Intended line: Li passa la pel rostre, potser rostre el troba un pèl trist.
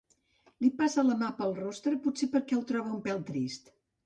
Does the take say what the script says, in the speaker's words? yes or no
no